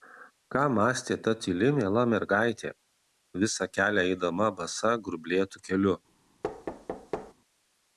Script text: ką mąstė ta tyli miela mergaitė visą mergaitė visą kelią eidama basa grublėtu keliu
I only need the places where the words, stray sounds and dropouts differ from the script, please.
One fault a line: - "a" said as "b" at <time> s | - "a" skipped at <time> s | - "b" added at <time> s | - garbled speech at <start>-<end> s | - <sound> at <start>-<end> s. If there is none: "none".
- "mergaitė visą" skipped at 3.7 s
- thud at 6.4-7.3 s